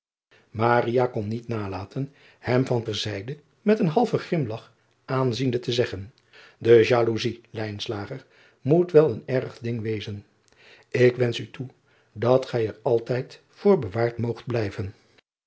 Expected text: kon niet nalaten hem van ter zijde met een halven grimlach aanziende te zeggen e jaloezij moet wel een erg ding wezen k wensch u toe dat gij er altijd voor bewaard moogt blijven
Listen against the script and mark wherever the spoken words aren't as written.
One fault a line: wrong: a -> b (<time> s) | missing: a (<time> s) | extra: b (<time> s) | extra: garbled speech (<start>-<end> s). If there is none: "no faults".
no faults